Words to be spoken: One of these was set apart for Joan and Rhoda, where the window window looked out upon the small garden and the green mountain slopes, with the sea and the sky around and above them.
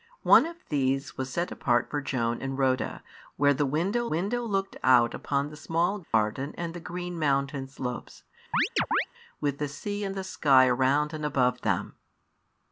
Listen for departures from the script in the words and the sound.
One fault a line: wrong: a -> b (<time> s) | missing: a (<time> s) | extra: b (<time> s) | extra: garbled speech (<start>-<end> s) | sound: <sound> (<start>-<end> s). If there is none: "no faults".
sound: dropout (6.0-6.1 s)
sound: chirp (8.5-9.1 s)